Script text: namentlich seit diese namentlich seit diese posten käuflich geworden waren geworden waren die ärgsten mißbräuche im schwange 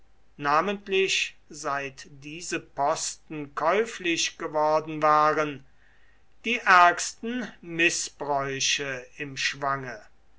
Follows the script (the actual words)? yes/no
no